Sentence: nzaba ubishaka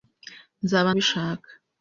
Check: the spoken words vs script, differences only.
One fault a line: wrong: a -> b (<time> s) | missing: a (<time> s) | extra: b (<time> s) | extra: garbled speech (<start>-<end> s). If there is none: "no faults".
no faults